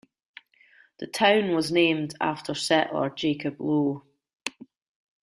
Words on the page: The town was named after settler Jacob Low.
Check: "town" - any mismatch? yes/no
no